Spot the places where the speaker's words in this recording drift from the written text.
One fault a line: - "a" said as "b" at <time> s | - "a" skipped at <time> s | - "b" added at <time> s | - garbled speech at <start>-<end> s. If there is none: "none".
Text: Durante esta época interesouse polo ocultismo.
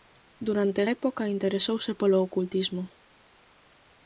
- "esta" skipped at 0.8 s